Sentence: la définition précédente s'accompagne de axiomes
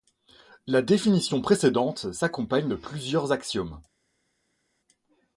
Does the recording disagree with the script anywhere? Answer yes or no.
yes